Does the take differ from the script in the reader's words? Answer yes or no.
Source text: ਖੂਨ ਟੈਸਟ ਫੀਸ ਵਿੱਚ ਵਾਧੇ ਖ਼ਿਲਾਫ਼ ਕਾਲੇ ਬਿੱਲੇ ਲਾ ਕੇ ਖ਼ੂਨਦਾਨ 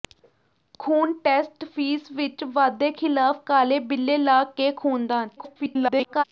yes